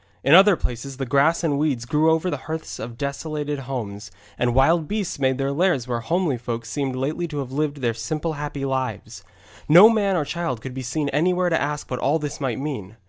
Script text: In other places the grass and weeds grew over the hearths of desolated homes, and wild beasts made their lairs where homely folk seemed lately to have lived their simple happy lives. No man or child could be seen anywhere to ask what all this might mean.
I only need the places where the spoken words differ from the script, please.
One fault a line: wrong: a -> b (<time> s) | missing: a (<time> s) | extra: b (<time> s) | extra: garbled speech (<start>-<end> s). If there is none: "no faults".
no faults